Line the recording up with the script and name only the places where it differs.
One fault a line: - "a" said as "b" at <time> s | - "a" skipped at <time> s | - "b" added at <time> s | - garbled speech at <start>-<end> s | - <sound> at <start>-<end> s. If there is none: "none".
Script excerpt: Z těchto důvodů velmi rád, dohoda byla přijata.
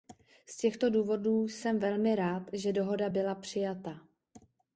- "jsem" added at 1.5 s
- "že" added at 2.5 s